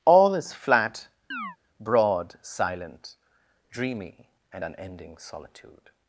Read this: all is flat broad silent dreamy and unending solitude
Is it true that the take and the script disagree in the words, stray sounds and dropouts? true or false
true